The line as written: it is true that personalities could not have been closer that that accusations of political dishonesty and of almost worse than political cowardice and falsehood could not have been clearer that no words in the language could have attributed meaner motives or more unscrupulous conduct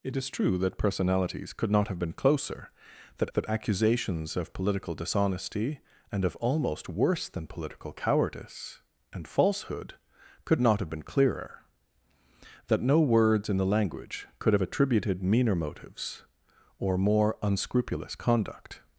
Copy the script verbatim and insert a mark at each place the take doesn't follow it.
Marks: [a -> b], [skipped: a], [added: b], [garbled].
it is true that personalities could not have been closer that that accusations of political dishonesty and of almost worse than political cowardice and falsehood could not have been clearer that no words in the language could have attributed meaner motives or more unscrupulous conduct